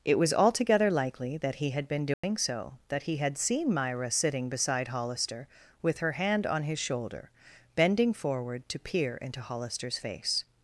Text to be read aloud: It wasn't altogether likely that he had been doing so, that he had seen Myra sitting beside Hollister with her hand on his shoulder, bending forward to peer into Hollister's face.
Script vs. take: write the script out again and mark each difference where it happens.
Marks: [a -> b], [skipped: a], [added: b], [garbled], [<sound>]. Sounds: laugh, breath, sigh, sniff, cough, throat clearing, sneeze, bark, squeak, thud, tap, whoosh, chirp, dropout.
It [wasn't -> was] altogether likely that he had been doing [dropout] so, that he had seen Myra sitting beside Hollister with her hand on his shoulder, bending forward to peer into Hollister's face.